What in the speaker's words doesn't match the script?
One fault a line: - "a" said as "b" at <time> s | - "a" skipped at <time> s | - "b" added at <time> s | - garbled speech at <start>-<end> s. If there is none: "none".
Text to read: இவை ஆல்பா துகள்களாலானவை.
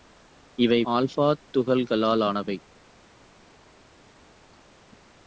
none